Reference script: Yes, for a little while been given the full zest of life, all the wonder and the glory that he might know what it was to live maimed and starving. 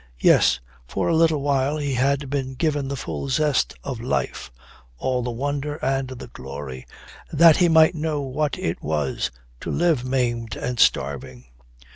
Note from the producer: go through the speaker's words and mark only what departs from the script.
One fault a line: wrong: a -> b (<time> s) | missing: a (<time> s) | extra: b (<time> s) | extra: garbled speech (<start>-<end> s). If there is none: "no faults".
extra: he had (1.8 s)